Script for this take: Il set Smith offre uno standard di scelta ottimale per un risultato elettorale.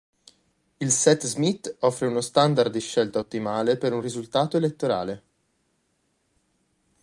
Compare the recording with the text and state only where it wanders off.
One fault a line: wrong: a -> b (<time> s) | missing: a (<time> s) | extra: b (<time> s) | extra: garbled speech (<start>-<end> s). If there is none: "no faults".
no faults